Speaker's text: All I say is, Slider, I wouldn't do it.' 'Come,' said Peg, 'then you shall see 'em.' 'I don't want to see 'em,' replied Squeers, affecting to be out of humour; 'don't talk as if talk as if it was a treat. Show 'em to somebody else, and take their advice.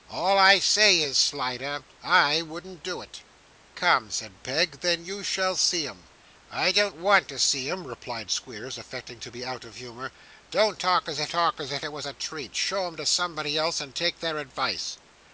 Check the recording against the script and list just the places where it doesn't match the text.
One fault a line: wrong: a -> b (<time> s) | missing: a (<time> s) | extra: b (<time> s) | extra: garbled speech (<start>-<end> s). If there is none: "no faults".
no faults